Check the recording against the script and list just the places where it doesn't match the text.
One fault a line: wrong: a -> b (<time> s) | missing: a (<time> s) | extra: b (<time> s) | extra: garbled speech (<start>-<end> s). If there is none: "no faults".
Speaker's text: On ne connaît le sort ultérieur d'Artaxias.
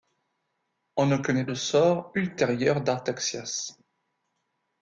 no faults